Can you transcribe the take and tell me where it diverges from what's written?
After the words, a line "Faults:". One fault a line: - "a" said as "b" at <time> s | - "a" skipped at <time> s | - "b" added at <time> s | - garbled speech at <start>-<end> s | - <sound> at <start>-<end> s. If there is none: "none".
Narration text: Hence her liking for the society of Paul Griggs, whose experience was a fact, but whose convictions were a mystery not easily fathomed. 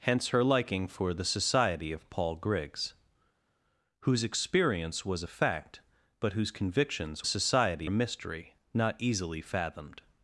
Hence her liking for the society of Paul Griggs, whose experience was a fact, but whose convictions society a mystery not easily fathomed.
Faults:
- "were" said as "society" at 7.2 s